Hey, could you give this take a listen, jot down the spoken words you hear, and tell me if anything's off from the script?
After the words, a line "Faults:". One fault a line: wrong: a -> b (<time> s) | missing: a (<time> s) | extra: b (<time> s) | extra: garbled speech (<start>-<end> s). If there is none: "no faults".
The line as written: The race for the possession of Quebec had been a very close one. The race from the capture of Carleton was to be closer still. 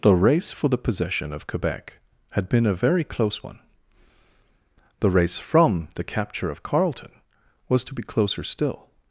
The race for the possession of Quebec had been a very close one. The race from the capture of Carleton was to be closer still.
Faults:
no faults